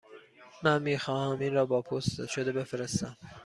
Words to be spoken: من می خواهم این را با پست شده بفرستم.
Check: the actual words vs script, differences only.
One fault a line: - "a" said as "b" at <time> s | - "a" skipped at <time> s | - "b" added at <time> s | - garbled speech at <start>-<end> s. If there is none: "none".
none